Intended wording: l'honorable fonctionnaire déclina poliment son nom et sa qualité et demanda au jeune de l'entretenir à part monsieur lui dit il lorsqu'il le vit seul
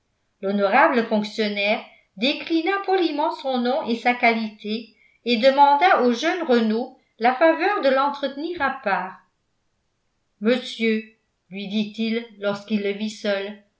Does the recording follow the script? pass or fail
fail